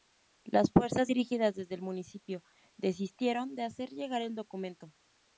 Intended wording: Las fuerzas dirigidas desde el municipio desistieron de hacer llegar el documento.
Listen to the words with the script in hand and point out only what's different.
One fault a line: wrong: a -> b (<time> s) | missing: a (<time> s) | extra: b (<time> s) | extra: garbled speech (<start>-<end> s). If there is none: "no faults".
no faults